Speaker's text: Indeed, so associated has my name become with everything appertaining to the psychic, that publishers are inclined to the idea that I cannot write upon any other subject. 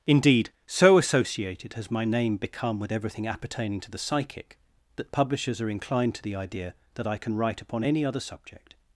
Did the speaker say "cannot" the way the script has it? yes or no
no